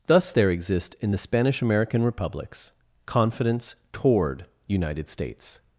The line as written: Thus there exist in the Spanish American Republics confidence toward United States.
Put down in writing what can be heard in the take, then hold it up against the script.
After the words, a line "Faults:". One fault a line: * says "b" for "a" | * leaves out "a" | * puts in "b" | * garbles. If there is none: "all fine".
Thus there exist in the Spanish American Republics confidence toward United States.
Faults:
all fine